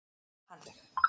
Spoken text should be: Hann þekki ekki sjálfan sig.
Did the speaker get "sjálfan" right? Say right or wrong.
wrong